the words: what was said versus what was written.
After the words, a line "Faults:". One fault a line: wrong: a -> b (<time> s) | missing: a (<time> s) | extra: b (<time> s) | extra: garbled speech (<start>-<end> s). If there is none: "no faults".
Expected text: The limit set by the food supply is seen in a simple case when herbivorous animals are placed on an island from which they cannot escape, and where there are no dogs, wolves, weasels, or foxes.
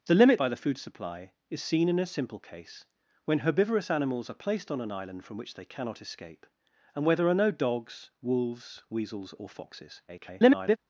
The limit by the food supply is seen in a simple case when herbivorous animals are placed on an island from which they cannot escape, and where there are no dogs, wolves, weasels, or foxes. [garbled]
Faults:
missing: set (0.4 s)
extra: garbled speech (10.1-10.8 s)